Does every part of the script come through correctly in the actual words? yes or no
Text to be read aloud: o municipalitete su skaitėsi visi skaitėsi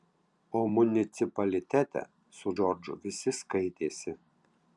no